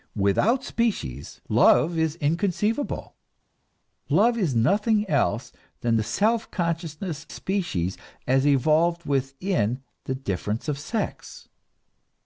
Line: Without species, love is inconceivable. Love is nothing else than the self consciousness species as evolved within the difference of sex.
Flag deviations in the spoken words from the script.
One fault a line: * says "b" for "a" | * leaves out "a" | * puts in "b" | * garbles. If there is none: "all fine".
all fine